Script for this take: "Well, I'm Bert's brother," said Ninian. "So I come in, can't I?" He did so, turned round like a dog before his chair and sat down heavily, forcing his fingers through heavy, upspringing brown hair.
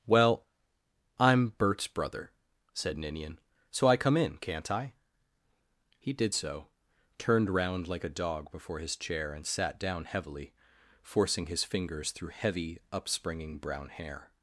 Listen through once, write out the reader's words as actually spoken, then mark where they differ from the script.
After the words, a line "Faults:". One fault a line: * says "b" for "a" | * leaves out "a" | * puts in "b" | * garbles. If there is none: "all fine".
"Well, I'm Bert's brother," said Ninian. "So I come in, can't I?" He did so, turned round like a dog before his chair and sat down heavily, forcing his fingers through heavy, upspringing brown hair.
Faults:
all fine